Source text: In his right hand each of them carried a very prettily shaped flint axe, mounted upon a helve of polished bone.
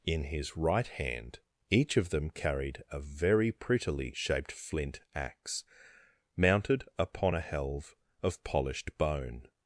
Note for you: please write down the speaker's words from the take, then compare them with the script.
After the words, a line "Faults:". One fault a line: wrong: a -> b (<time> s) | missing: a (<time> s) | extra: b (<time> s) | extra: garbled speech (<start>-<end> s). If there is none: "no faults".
In his right hand each of them carried a very prettily shaped flint axe, mounted upon a helve of polished bone.
Faults:
no faults